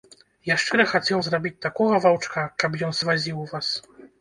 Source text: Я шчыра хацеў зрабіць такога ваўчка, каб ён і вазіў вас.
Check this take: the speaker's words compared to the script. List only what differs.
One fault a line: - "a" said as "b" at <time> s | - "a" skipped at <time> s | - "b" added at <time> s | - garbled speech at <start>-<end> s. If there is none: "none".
none